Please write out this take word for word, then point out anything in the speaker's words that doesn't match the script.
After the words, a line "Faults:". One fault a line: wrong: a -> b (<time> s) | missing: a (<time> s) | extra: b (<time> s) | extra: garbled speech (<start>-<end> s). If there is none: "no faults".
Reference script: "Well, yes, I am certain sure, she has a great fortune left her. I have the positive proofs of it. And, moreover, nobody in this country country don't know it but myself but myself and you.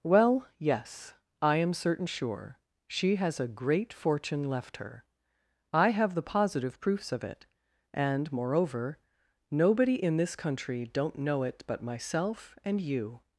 "Well, yes, I am certain sure, she has a great fortune left her. I have the positive proofs of it. And, moreover, nobody in this country don't know it but myself and you.
Faults:
missing: country (10.9 s)
missing: but myself (12.6 s)